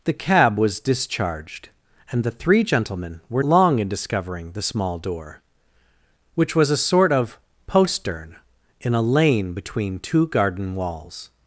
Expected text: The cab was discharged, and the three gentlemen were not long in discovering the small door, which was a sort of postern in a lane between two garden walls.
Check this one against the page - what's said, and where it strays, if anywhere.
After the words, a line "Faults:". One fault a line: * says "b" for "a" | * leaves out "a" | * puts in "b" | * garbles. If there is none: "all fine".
The cab was discharged, and the three gentlemen were long in discovering the small door, which was a sort of postern in a lane between two garden walls.
Faults:
* leaves out "not"